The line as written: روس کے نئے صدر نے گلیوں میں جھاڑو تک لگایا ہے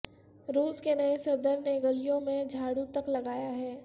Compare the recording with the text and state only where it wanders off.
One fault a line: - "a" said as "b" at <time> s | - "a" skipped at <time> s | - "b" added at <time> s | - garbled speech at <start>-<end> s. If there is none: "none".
none